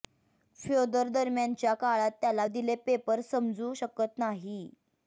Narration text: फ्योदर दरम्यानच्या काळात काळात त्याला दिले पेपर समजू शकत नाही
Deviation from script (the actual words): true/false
true